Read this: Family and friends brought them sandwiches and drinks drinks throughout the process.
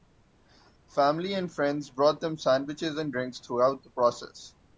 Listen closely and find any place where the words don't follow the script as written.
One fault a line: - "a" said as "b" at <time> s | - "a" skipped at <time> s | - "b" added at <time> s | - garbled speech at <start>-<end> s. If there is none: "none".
- "drinks" skipped at 3.4 s